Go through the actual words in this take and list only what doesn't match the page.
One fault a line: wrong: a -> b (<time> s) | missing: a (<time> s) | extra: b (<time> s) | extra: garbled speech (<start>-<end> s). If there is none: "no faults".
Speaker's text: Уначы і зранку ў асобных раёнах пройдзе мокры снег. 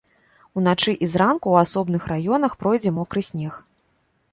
no faults